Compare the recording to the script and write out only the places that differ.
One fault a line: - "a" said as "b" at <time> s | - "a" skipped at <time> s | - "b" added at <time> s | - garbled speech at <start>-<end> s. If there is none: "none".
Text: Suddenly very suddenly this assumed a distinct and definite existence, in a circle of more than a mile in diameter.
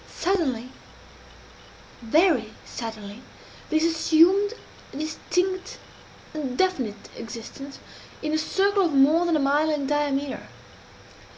none